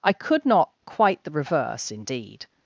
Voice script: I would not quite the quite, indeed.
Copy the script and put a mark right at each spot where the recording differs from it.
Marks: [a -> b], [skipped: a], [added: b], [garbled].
I [would -> could] not quite the [quite, -> reverse] indeed.